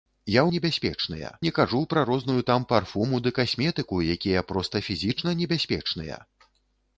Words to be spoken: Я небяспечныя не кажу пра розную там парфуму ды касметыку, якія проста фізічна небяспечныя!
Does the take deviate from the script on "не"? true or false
false